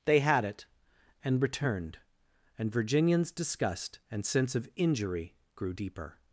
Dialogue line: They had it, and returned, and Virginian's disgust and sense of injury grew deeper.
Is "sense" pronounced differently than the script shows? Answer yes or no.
no